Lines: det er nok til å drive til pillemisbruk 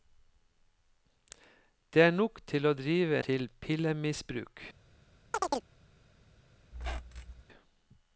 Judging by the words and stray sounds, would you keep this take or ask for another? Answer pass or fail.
fail